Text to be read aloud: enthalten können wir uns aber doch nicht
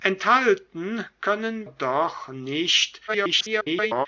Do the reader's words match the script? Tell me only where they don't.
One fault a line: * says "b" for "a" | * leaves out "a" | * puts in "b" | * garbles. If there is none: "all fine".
* leaves out "wir uns aber"
* garbles